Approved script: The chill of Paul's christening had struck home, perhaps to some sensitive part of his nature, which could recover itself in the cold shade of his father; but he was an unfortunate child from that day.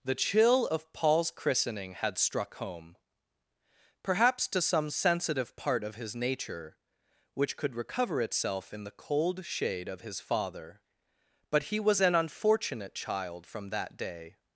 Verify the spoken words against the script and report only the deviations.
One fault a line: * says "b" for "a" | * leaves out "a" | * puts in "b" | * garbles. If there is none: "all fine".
all fine